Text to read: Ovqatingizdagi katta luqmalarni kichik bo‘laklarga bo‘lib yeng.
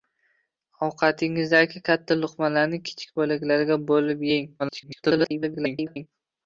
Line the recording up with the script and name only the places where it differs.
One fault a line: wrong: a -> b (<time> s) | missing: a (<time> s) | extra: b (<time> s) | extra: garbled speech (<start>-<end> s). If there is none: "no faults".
extra: garbled speech (4.6-6.1 s)